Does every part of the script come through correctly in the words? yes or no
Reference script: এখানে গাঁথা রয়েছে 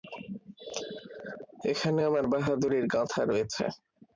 no